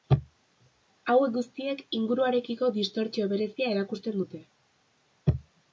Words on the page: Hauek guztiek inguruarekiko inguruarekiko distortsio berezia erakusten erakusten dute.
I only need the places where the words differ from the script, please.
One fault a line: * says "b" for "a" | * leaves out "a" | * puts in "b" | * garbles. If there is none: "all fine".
* leaves out "inguruarekiko"
* leaves out "erakusten"